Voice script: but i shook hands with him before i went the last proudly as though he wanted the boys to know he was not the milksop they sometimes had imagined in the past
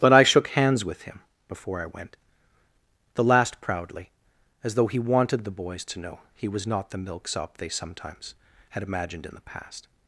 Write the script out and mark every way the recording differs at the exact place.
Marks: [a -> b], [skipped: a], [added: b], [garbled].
but i shook hands with him before i went the last proudly as though he wanted the boys to know he was not the milksop they sometimes had imagined in the past